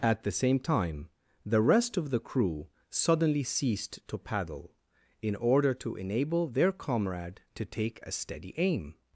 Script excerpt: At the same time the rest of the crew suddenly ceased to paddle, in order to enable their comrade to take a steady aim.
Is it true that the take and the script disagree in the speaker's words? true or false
false